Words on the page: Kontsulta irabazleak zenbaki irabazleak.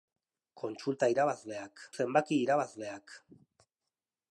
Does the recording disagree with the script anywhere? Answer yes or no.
no